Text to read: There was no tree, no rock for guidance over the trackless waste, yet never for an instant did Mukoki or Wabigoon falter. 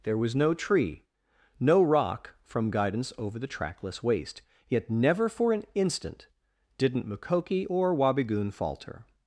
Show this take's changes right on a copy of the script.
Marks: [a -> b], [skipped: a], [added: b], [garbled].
There was no tree, no rock [for -> from] guidance over the trackless waste, yet never for an instant [did -> didn't] Mukoki or Wabigoon falter.